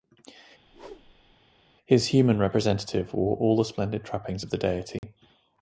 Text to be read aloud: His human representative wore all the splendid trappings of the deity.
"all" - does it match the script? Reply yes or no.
yes